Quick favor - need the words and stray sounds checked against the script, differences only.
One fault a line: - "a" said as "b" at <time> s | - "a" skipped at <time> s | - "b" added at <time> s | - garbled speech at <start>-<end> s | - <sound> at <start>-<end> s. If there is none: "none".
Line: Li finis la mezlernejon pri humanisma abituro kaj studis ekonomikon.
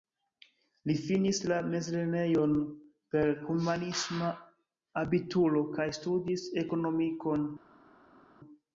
- "pri" said as "per" at 3.2 s